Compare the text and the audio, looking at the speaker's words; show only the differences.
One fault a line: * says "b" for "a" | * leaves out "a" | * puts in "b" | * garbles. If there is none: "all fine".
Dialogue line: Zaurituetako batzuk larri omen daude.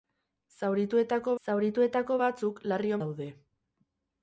* puts in "zaurituetako"
* leaves out "omen"